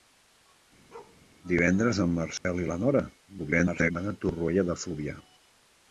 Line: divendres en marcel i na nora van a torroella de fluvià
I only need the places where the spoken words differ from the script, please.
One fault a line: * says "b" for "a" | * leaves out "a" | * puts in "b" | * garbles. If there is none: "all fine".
* garbles